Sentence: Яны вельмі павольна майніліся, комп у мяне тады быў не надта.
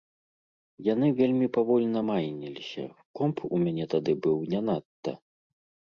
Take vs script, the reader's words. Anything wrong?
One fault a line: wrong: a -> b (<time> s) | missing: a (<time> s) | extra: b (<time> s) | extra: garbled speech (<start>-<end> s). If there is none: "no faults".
no faults